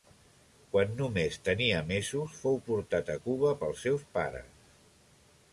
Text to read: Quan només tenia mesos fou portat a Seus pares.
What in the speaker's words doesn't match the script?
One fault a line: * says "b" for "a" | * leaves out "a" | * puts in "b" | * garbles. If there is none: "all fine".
* puts in "Cuba pels"